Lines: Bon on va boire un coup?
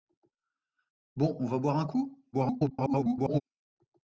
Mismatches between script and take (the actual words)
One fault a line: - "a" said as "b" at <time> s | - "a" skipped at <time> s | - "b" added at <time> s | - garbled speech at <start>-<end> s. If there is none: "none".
- garbled speech at 2.3-3.4 s